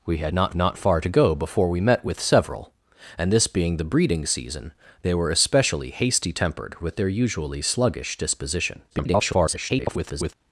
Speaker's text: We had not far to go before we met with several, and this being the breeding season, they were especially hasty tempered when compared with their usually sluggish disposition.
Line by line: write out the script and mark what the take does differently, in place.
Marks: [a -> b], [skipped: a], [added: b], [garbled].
We had not [added: not] far to go before we met with several, and this being the breeding season, they were especially hasty tempered [skipped: when compared] with their usually sluggish disposition. [garbled]